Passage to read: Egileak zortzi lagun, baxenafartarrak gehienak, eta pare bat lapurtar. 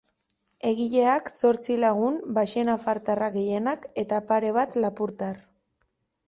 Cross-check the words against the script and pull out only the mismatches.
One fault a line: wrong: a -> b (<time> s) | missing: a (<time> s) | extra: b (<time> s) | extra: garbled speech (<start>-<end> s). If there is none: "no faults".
no faults